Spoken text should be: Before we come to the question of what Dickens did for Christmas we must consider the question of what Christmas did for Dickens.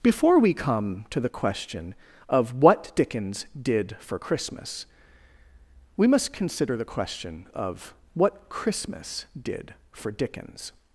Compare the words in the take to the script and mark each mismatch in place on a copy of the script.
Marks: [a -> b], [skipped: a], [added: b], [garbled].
Before we come to the question of what Dickens did for Christmas we must consider the question of what Christmas did for Dickens.